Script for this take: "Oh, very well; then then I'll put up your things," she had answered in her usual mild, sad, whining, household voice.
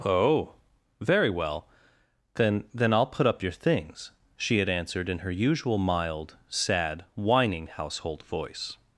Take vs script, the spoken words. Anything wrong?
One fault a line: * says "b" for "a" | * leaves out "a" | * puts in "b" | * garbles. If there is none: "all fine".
all fine